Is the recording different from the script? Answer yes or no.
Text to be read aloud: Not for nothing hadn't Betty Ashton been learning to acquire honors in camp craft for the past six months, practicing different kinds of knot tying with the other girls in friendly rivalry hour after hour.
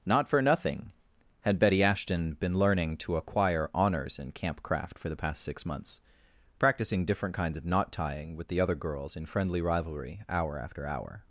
yes